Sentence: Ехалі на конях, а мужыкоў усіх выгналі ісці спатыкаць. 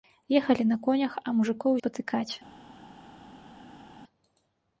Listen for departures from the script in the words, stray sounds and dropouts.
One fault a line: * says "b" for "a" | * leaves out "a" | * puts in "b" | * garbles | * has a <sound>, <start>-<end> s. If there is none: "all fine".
* leaves out "усіх выгналі ісці"